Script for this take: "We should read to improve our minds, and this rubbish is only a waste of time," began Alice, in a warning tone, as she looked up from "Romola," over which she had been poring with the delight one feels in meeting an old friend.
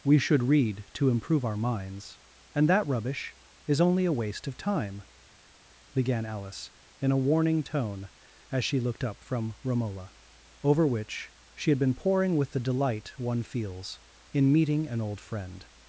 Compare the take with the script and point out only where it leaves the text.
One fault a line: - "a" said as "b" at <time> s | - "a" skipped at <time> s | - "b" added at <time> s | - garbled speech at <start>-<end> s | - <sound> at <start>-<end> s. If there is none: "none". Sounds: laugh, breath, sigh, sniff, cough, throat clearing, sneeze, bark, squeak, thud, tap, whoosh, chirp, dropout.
- "this" said as "that" at 2.7 s